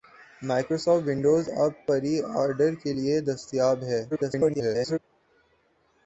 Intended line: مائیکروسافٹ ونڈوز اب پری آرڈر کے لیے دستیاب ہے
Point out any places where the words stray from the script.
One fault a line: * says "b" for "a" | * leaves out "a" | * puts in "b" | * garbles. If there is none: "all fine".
* garbles